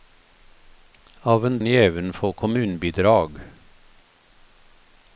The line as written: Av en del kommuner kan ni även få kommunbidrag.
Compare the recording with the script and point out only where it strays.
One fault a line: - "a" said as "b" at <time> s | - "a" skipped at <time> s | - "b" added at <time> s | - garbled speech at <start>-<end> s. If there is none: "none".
- "del kommuner kan" skipped at 1.6 s